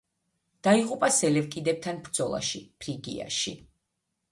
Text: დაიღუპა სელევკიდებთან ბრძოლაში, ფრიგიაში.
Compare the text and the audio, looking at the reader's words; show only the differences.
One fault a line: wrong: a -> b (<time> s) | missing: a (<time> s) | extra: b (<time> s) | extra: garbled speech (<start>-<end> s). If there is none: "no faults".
no faults